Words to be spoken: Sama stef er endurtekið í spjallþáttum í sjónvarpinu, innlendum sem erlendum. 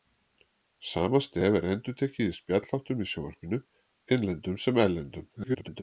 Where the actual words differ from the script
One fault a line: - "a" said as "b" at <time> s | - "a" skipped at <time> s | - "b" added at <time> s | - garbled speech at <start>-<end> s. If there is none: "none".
- garbled speech at 5.3-5.8 s